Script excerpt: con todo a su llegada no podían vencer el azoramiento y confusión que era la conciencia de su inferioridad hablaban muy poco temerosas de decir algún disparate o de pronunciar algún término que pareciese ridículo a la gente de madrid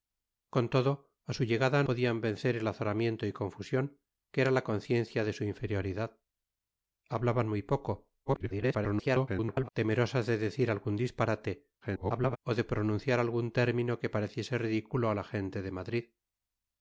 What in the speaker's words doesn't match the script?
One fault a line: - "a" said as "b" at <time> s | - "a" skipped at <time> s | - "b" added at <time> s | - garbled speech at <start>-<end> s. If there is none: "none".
- "no" skipped at 1.8 s
- garbled speech at 8.3-9.7 s
- garbled speech at 11.8-12.4 s